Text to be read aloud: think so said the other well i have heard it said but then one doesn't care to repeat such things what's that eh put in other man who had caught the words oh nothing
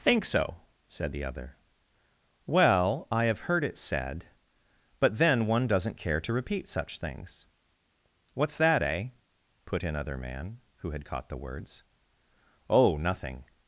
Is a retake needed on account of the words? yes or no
no